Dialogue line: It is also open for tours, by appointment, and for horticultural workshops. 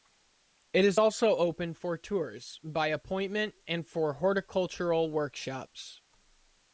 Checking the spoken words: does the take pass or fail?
pass